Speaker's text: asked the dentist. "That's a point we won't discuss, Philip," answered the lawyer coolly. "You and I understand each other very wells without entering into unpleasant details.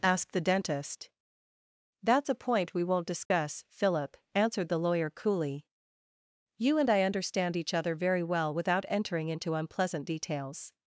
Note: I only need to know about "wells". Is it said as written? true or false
false